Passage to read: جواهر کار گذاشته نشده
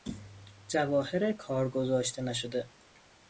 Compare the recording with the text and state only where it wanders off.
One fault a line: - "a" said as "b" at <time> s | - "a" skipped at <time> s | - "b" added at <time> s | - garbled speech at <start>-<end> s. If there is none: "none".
none